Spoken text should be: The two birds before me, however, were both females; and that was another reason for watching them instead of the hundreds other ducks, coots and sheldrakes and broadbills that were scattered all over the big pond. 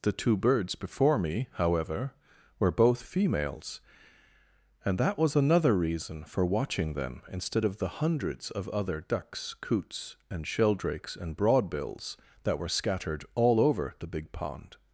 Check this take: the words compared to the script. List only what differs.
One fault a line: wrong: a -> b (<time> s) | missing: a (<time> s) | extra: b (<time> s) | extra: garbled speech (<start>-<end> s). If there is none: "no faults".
extra: of (8.5 s)